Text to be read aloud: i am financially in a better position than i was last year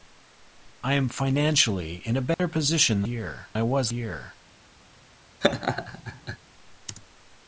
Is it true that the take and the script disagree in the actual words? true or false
true